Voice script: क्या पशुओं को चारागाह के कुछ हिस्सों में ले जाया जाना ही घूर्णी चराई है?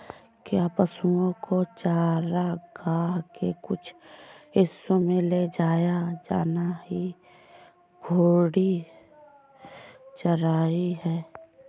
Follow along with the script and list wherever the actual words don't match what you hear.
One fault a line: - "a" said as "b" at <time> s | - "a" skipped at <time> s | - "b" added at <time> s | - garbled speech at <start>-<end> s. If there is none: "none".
none